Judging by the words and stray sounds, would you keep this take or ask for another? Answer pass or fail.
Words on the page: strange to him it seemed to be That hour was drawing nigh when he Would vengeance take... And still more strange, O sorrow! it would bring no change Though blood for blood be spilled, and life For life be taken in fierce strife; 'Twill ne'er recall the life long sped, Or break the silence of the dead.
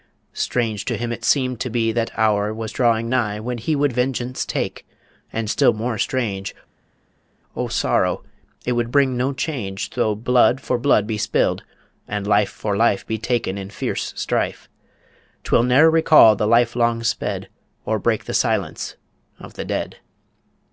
pass